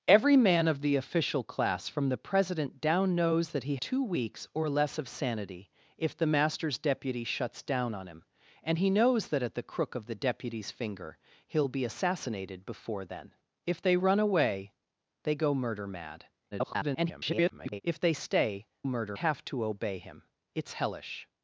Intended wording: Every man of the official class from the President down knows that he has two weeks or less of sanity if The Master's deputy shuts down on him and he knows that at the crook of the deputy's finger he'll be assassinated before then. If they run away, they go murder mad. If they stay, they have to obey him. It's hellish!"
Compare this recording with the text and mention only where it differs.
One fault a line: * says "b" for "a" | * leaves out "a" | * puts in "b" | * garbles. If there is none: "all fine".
* leaves out "has"
* garbles
* says "murder" for "they"